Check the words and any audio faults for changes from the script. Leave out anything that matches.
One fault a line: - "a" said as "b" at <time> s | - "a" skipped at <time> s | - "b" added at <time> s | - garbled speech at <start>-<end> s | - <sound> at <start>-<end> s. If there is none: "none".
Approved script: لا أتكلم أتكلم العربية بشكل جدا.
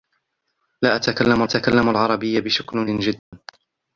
- dropout at 3.2-3.3 s